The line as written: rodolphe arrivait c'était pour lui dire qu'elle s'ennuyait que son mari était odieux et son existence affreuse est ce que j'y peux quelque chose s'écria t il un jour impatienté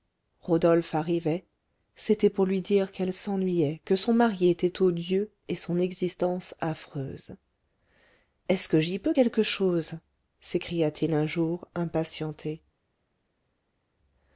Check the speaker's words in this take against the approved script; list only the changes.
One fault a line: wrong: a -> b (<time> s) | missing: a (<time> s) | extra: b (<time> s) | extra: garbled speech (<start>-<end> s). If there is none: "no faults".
no faults